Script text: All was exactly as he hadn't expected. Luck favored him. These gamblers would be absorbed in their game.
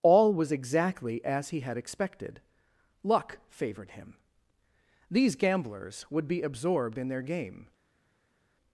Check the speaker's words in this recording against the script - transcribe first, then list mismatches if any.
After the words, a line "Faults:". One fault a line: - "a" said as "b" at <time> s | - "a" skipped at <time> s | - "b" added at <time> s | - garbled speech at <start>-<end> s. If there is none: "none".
All was exactly as he had expected. Luck favored him. These gamblers would be absorbed in their game.
Faults:
- "hadn't" said as "had" at 1.6 s